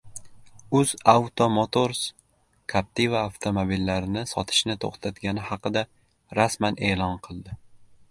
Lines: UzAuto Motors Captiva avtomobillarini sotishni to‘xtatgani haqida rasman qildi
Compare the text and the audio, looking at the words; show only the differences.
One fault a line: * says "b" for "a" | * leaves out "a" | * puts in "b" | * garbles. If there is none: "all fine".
* puts in "e'lon"